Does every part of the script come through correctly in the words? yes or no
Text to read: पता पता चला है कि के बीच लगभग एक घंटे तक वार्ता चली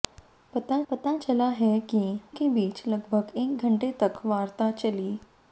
yes